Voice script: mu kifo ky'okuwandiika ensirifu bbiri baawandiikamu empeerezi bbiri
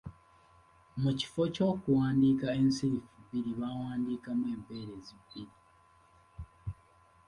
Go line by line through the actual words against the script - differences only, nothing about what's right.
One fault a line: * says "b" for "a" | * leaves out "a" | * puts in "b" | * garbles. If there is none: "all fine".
all fine